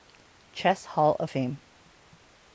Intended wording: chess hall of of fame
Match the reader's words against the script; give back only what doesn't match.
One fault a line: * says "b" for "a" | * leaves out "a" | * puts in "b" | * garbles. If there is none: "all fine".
* leaves out "of"